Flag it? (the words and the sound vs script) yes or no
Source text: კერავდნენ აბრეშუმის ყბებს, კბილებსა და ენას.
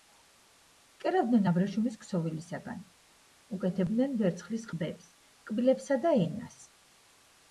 yes